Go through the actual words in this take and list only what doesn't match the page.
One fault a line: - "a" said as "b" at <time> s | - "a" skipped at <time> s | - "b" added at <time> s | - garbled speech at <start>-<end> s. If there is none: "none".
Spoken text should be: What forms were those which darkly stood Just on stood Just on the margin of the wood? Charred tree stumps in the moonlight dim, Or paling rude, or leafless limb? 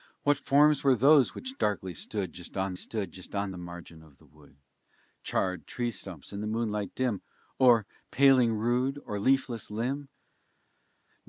none